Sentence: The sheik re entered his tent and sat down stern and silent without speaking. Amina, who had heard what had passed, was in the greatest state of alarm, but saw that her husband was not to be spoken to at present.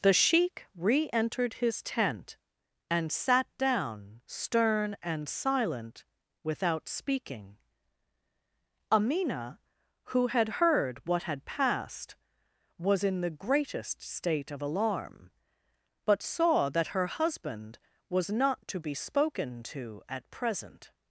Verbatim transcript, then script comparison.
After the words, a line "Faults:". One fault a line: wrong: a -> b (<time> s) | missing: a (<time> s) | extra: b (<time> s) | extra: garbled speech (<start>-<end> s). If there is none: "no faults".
The sheik re entered his tent and sat down stern and silent without speaking. Amina, who had heard what had passed, was in the greatest state of alarm, but saw that her husband was not to be spoken to at present.
Faults:
no faults